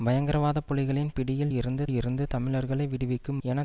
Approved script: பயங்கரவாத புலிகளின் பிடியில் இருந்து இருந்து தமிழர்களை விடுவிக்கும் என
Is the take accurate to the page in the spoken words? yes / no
yes